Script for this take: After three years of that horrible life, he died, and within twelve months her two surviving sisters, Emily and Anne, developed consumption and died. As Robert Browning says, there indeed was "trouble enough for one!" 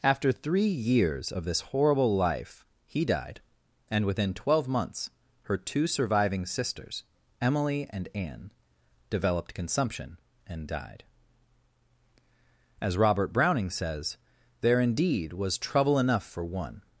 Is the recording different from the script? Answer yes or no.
yes